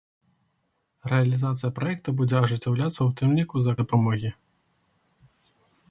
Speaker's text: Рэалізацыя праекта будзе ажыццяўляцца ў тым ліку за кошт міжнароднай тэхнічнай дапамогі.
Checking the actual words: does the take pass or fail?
fail